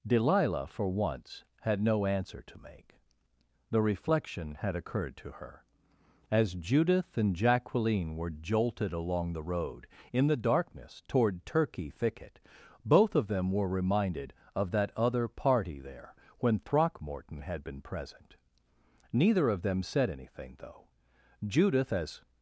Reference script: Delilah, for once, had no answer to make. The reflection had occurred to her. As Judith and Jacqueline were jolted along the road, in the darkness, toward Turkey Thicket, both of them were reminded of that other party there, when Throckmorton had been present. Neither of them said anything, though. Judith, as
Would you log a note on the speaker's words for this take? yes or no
no